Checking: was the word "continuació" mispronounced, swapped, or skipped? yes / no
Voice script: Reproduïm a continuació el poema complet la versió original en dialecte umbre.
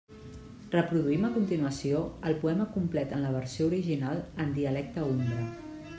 no